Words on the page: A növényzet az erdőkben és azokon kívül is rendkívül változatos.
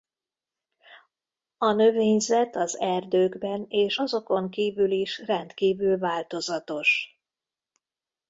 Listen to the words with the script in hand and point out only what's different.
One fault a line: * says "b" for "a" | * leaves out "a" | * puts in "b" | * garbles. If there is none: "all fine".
all fine